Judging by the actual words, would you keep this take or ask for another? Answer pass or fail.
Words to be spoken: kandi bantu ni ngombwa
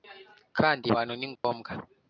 pass